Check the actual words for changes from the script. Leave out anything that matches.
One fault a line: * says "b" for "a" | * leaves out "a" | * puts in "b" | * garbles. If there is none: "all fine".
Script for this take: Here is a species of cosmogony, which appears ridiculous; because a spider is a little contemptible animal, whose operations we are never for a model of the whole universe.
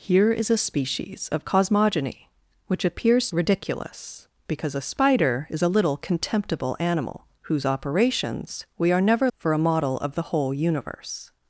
all fine